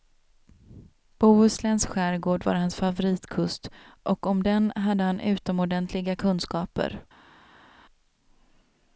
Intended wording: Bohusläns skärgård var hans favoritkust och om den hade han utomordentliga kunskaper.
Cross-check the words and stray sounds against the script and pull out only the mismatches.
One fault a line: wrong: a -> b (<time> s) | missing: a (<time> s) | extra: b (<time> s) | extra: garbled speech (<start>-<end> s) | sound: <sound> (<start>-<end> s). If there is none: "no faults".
no faults